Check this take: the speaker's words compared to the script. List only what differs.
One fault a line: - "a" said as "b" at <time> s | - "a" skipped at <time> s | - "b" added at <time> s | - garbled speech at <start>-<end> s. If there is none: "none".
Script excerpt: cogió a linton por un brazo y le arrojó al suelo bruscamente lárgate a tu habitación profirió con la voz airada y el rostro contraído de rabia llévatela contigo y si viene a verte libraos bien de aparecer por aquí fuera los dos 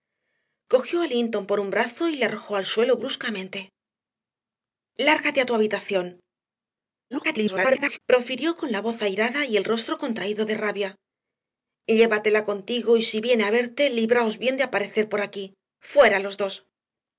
- garbled speech at 7.1-8.0 s